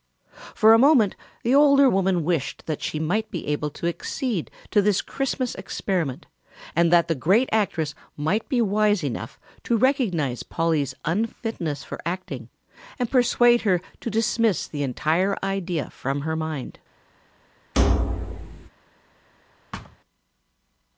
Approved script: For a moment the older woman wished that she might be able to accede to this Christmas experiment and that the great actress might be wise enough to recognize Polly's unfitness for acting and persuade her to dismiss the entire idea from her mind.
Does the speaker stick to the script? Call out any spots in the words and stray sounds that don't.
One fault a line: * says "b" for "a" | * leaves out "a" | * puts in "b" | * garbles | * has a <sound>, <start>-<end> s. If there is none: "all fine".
* has a thud, 17.7-18.7 s
* has a thud, 19.7-20.0 s